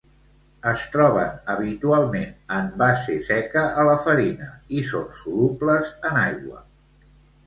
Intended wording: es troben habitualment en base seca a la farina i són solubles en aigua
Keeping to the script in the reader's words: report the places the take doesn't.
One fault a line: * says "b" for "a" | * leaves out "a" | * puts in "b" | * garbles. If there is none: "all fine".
all fine